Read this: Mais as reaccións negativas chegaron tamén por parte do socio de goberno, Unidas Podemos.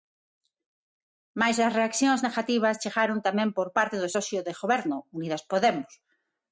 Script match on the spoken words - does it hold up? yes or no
yes